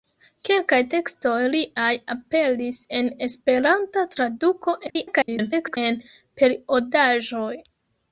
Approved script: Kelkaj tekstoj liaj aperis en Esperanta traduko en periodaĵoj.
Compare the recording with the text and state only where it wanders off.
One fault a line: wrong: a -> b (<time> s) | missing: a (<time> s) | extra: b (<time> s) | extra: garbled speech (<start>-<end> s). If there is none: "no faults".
extra: garbled speech (4.9-5.8 s)